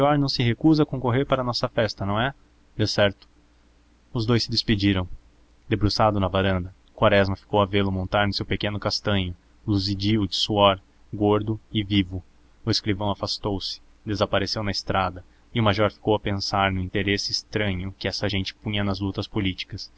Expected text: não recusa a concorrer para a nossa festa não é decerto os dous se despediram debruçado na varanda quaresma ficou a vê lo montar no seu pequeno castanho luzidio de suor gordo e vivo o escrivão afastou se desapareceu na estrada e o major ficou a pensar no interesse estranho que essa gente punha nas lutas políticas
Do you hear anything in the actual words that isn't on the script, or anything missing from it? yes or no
yes